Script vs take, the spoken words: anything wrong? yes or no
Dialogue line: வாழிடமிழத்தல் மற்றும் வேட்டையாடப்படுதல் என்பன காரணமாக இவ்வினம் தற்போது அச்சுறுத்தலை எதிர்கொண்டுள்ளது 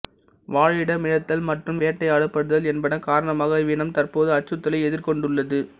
no